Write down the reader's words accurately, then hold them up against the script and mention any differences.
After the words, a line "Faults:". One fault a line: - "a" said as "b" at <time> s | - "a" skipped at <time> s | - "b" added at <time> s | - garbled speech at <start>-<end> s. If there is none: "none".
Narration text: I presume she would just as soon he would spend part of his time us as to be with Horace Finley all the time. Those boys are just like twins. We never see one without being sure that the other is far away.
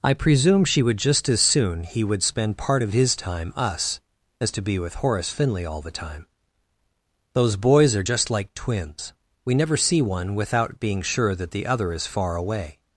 I presume she would just as soon he would spend part of his time us as to be with Horace Finley all the time. Those boys are just like twins. We never see one without being sure that the other is far away.
Faults:
none